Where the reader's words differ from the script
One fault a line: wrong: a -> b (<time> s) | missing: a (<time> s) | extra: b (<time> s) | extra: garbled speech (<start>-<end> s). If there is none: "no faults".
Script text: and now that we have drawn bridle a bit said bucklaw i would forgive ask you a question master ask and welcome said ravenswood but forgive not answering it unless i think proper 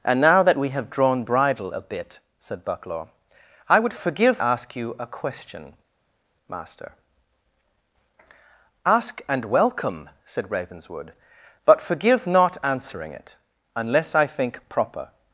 no faults